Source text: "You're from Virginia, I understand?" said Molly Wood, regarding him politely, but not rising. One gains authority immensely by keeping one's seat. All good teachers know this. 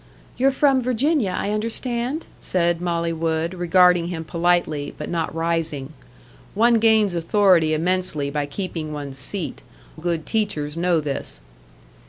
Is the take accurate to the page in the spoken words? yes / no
no